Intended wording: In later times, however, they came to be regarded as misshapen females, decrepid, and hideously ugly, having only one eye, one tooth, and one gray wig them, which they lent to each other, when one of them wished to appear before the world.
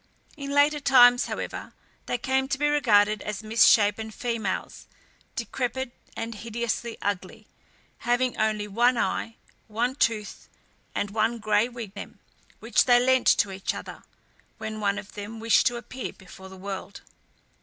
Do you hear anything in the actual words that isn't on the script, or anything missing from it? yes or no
no